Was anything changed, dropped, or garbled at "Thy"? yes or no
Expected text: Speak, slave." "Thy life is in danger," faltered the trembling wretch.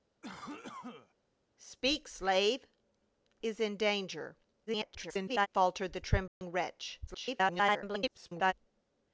yes